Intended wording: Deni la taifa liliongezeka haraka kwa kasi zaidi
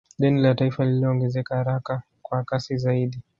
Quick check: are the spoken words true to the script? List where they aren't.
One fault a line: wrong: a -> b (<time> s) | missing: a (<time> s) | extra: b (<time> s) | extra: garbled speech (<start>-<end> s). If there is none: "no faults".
no faults